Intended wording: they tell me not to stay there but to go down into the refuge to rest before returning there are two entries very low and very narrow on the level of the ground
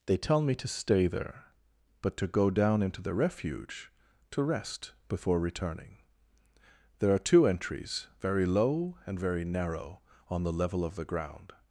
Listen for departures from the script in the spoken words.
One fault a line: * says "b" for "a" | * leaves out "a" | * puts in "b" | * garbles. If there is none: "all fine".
* leaves out "not"